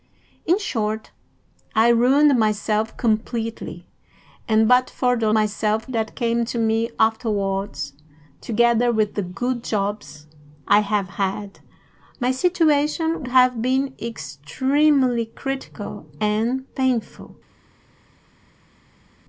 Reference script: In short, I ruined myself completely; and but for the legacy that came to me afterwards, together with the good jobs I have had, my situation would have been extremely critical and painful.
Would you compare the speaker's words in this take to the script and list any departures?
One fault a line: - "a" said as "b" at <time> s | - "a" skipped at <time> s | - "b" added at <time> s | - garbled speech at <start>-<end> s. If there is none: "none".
- "legacy" said as "myself" at 5.3 s
- "would" skipped at 13.3 s